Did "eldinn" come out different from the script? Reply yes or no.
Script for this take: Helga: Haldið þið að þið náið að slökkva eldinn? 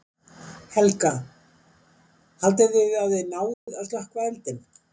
no